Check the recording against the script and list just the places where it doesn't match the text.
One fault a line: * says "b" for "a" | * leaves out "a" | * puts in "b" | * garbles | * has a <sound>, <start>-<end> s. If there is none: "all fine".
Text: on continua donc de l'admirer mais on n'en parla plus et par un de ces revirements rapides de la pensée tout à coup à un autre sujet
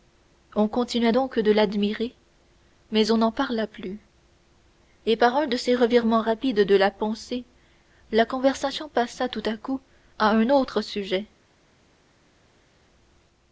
* puts in "la conversation passa"